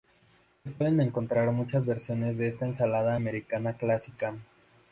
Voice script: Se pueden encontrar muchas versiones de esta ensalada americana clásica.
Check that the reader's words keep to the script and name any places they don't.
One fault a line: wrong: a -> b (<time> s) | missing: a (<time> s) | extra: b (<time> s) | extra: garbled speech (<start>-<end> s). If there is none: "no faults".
no faults